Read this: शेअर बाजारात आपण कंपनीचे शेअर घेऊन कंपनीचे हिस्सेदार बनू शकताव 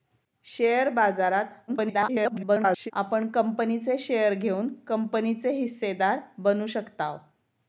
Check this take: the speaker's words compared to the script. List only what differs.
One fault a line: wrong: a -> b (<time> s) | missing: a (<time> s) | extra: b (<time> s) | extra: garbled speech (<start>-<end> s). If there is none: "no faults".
extra: garbled speech (1.7-2.9 s)